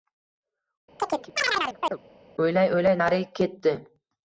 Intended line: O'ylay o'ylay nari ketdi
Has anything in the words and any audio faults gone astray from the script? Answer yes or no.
yes